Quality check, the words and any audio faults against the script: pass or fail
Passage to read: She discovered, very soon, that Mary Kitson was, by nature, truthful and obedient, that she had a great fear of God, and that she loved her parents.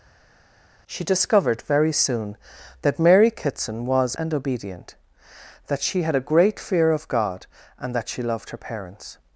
fail